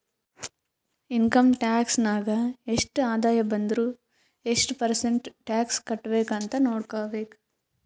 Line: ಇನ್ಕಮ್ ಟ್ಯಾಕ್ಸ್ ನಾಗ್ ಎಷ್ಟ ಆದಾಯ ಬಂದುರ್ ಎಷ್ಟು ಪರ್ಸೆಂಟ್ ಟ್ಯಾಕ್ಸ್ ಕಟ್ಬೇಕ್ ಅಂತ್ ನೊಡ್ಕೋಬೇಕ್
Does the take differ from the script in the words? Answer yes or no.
no